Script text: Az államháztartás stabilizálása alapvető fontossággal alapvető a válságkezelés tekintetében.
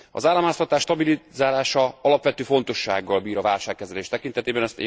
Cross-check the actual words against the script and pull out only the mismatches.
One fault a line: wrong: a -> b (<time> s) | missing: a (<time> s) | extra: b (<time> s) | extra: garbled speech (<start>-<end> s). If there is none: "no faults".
wrong: alapvető -> bír (3.2 s)